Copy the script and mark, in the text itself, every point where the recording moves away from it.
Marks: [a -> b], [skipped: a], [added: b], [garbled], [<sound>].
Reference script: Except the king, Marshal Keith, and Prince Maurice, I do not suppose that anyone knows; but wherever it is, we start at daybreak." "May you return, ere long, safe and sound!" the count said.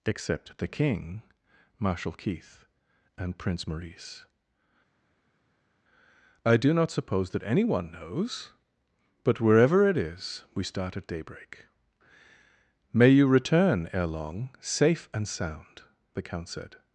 Except the king, Marshal Keith, and Prince Maurice, I do not suppose that anyone knows; but wherever it is, we start at daybreak." "May you return, ere long, safe and sound!" the count said.